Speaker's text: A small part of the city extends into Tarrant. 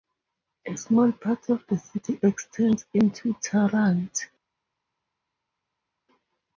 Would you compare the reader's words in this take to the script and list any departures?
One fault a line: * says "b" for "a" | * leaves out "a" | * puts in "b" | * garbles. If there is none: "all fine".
all fine